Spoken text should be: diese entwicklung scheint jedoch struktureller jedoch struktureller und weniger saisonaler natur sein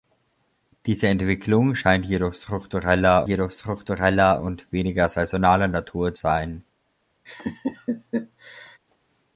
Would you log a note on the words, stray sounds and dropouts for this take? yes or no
yes